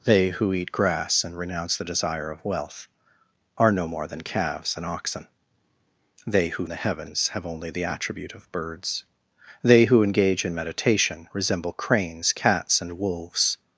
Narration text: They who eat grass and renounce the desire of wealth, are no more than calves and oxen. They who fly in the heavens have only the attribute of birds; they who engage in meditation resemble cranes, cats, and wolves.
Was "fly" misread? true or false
true